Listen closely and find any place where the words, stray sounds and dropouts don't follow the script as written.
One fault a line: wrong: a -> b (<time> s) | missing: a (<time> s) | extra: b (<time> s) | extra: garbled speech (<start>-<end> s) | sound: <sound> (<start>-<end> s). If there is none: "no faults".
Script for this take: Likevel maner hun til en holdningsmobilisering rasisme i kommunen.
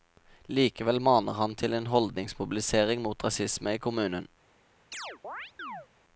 wrong: hun -> han (1.4 s)
extra: mot (3.0 s)
sound: chirp (4.9-5.9 s)